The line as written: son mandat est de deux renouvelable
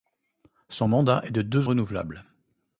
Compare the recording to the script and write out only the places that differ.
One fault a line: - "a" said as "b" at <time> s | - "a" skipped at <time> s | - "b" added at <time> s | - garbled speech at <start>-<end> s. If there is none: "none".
none